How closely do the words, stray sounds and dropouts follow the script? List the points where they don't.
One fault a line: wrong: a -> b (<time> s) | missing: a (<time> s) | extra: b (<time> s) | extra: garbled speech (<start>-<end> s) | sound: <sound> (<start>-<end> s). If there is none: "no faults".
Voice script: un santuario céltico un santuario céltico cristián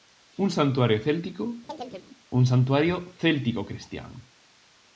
sound: chirp (1.7-2.1 s)